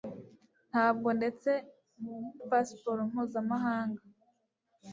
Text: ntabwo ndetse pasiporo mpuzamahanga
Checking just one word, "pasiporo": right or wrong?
right